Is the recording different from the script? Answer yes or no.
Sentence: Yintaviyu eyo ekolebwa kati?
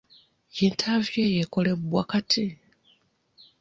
no